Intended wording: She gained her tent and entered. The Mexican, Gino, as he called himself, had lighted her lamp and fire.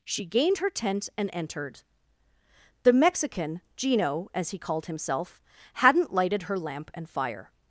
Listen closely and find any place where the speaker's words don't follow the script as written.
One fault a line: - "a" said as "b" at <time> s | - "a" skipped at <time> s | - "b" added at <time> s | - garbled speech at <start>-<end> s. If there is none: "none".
- "had" said as "hadn't" at 5.8 s